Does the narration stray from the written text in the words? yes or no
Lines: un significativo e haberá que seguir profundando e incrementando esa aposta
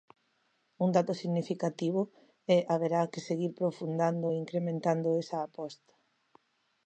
yes